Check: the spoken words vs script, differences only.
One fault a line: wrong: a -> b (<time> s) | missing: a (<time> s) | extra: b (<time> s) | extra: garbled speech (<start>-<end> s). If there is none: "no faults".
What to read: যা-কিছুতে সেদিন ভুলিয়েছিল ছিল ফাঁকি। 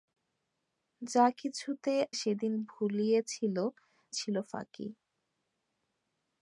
no faults